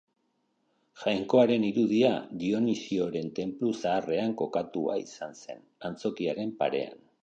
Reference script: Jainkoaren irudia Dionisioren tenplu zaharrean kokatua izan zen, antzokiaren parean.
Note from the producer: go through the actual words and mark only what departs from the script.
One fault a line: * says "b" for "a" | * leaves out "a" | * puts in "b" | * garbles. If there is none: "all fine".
all fine